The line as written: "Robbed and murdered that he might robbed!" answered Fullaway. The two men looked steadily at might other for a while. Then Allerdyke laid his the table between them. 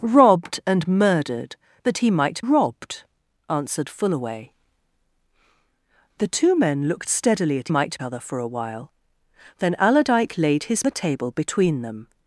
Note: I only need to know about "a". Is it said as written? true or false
true